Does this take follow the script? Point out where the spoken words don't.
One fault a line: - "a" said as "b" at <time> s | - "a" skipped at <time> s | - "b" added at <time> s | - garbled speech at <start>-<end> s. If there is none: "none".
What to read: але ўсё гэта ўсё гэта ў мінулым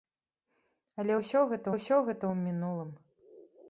none